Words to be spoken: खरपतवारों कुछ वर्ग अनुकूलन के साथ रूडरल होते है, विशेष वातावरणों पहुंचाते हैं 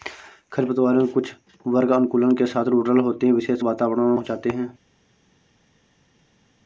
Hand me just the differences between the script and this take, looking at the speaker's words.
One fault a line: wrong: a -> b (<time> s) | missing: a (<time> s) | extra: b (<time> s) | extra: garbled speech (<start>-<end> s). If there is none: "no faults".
no faults